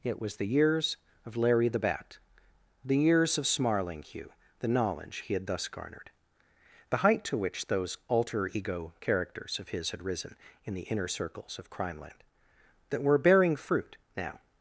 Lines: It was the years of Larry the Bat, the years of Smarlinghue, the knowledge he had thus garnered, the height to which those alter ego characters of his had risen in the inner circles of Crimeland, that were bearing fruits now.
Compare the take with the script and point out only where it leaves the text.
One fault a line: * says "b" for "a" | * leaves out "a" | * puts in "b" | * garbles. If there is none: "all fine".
* says "fruit" for "fruits"